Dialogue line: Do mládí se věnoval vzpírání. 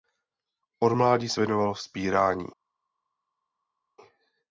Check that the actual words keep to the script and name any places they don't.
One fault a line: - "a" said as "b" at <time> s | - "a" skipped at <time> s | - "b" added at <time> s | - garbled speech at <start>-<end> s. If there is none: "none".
- "Do" said as "Od" at 0.8 s